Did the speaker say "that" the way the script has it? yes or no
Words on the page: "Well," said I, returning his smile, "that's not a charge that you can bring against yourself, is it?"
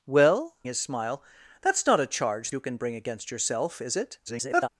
no